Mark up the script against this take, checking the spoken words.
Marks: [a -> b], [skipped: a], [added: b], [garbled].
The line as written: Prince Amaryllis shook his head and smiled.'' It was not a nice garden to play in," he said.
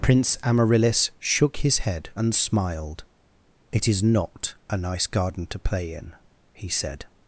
Prince Amaryllis shook his head and smiled.'' It [was -> is] not a nice garden to play in," he said.